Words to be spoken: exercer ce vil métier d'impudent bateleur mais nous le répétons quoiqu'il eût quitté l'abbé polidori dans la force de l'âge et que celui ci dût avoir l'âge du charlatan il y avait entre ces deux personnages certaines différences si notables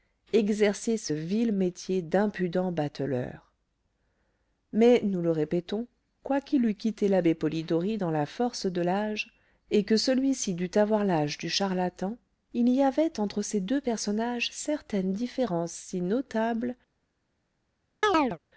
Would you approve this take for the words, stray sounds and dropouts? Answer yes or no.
no